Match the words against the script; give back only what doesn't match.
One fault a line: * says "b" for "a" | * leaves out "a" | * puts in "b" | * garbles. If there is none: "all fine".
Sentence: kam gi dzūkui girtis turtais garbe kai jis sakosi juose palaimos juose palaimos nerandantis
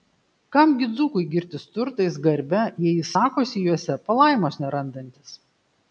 * says "jei" for "kai"
* leaves out "juose palaimos"